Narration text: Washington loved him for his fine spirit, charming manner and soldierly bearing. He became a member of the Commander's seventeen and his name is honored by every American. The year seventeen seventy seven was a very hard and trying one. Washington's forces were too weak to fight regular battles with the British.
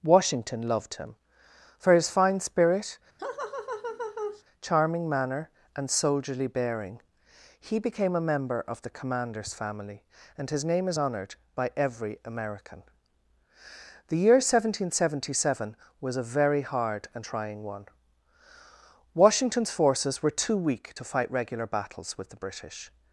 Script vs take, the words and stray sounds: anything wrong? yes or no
yes